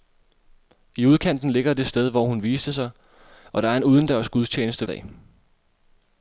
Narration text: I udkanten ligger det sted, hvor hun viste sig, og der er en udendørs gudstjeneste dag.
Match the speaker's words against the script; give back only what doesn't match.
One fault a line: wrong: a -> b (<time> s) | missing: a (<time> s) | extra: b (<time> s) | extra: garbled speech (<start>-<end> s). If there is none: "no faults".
no faults